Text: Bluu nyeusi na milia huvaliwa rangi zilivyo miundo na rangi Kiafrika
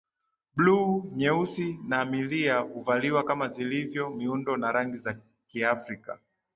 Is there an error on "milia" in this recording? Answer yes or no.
no